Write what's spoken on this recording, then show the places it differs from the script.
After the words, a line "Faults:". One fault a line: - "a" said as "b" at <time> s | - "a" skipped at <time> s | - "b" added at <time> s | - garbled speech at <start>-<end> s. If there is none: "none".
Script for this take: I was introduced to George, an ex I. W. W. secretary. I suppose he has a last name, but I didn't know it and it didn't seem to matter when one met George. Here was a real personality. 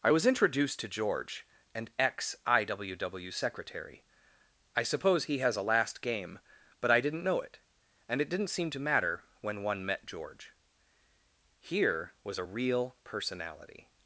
I was introduced to George, an ex I. W. W. secretary. I suppose he has a last game, but I didn't know it and it didn't seem to matter when one met George. Here was a real personality.
Faults:
- "name" said as "game" at 6.0 s